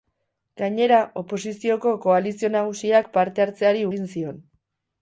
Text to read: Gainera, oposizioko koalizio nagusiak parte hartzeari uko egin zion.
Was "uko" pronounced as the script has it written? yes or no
no